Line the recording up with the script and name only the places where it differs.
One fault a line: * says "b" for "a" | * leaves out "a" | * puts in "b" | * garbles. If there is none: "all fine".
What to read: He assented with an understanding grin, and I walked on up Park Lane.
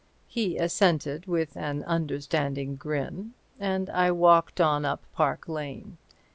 all fine